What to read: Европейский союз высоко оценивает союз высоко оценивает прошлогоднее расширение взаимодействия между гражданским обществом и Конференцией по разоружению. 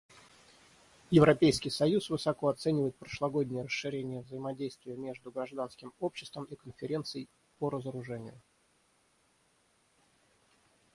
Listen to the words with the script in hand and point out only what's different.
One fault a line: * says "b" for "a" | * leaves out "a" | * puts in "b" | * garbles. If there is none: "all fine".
* leaves out "союз высоко оценивает"